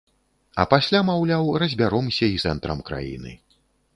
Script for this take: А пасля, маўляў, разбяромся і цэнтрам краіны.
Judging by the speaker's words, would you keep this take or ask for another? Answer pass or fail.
pass